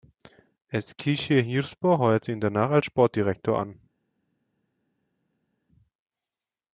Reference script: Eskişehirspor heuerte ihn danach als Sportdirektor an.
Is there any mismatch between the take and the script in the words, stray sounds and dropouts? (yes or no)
no